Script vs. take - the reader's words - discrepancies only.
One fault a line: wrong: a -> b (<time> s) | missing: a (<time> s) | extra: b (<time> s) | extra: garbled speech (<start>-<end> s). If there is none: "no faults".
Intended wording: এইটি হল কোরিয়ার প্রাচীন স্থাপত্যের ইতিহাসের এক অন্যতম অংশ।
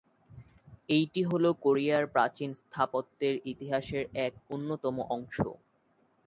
no faults